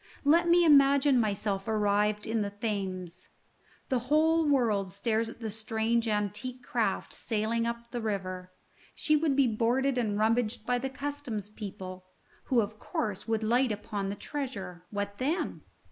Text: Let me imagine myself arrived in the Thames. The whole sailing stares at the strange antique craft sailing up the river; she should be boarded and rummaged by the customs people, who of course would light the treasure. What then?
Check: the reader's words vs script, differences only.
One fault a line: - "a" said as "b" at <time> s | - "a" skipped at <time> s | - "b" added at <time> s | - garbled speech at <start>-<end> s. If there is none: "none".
- "sailing" said as "world" at 4.5 s
- "should" said as "would" at 9.2 s
- "upon" added at 13.7 s